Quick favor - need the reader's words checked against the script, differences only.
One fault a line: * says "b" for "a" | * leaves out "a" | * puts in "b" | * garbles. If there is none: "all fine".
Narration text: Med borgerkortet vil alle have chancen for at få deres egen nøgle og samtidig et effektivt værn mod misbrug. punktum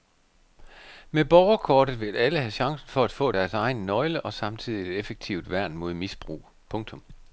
all fine